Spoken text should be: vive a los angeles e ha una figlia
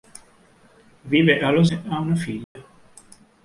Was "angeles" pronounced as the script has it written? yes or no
no